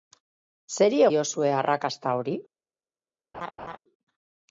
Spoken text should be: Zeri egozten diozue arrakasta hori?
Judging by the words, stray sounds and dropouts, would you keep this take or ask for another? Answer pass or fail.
fail